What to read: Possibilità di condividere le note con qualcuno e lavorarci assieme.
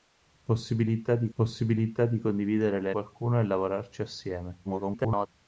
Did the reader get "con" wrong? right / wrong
wrong